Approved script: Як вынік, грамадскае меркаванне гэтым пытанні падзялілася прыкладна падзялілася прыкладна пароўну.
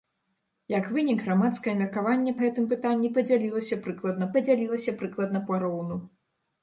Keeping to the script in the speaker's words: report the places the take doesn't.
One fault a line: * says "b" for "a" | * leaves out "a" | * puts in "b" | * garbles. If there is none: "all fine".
all fine